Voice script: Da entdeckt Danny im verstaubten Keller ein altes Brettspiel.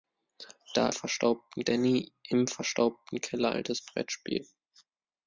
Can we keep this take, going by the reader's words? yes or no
no